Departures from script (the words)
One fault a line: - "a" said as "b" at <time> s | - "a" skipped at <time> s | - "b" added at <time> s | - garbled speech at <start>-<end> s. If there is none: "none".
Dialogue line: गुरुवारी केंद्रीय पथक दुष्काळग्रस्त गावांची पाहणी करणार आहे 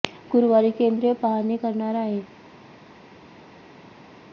- "पथक दुष्काळग्रस्त गावांची" skipped at 1.1 s